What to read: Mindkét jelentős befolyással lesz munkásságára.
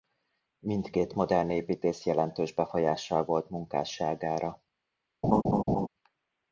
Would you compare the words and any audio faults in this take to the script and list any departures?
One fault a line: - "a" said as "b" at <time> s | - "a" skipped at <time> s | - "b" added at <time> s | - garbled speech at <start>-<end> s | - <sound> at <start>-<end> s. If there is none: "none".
- "modern építész" added at 1.1 s
- "lesz" said as "volt" at 3.2 s
- laugh at 5.2-5.9 s